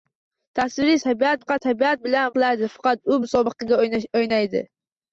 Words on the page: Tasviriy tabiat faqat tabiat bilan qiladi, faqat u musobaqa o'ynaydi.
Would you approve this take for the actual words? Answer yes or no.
yes